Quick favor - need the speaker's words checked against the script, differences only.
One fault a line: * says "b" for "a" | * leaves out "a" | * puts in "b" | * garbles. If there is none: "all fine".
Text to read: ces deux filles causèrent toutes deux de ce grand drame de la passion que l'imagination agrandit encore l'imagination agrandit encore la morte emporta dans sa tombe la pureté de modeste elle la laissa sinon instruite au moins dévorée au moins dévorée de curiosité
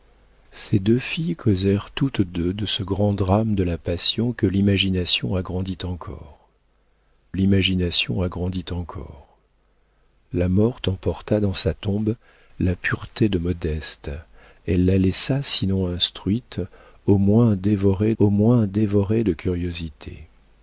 all fine